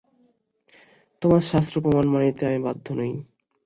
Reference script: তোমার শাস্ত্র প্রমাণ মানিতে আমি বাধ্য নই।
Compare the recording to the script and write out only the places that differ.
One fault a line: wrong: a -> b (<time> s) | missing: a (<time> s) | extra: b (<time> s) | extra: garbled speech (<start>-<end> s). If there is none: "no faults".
no faults